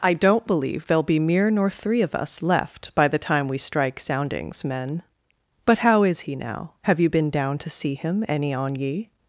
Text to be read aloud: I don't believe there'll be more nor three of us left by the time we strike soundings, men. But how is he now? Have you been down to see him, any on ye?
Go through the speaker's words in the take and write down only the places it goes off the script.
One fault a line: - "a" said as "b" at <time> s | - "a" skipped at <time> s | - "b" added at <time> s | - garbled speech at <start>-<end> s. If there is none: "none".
- "more" said as "mere" at 1.2 s